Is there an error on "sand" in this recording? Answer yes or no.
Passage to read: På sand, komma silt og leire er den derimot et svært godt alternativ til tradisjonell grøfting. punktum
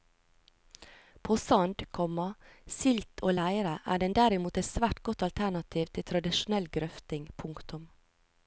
no